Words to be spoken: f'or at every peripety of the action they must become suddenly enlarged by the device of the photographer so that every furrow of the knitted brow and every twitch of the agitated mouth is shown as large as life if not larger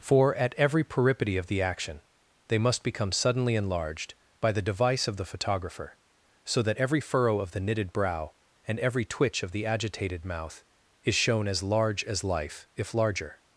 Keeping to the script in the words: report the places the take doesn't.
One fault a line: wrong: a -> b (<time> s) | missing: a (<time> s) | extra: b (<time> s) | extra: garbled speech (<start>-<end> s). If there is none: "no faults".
missing: not (12.9 s)